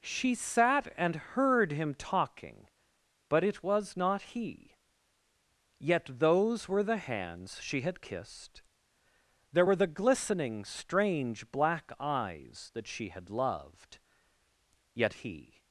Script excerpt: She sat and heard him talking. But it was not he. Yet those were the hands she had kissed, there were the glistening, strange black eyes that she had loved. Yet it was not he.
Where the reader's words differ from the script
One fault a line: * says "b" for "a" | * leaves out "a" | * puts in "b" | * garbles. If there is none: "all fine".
* leaves out "it was not"